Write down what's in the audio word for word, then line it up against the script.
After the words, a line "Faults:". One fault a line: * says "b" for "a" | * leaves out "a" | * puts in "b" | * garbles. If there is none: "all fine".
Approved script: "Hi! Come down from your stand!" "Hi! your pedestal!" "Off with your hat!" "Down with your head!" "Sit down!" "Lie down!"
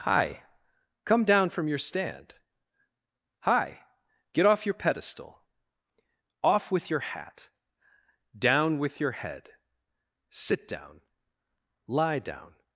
"Hi! Come down from your stand!" "Hi! get off your pedestal!" "Off with your hat!" "Down with your head!" "Sit down!" "Lie down!"
Faults:
* puts in "get off"